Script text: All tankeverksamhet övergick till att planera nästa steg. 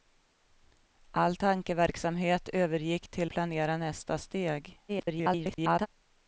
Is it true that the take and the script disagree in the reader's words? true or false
true